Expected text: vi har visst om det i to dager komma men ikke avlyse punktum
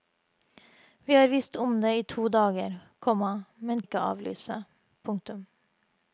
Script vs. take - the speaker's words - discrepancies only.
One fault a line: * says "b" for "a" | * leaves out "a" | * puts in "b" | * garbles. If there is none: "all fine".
all fine